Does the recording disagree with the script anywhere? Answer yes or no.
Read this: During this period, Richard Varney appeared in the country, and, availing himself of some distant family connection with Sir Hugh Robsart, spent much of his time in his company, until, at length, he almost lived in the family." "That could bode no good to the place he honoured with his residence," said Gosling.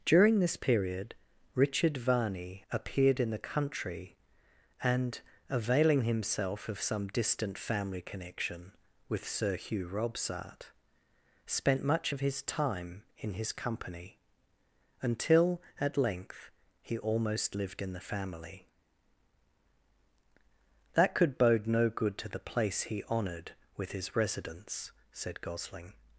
no